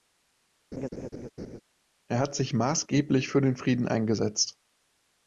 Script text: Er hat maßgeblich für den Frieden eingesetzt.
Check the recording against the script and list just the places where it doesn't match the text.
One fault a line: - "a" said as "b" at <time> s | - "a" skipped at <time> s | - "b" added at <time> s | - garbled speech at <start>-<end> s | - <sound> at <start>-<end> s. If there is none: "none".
- laugh at 0.7-1.6 s
- "sich" added at 2.3 s